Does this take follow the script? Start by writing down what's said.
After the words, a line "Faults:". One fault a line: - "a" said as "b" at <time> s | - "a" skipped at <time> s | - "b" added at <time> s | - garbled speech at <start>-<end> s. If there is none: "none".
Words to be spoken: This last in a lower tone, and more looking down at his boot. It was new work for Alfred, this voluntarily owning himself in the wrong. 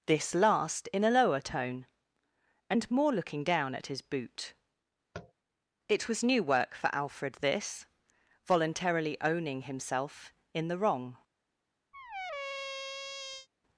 This last in a lower tone, and more looking down at his boot. It was new work for Alfred, this voluntarily owning himself in the wrong.
Faults:
none